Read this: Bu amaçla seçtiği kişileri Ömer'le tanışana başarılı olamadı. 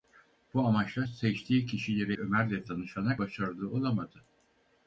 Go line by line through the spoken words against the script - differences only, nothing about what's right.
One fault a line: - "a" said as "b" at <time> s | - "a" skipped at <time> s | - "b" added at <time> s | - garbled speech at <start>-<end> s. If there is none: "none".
none